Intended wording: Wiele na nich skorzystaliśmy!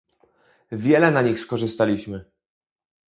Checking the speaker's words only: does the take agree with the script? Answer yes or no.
yes